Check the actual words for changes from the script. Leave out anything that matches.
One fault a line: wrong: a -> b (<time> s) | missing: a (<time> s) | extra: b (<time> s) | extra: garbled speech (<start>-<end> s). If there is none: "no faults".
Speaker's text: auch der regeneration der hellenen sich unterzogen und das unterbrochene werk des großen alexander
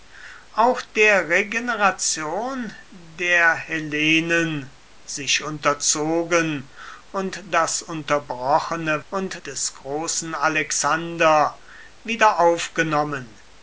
wrong: werk -> und (9.1 s)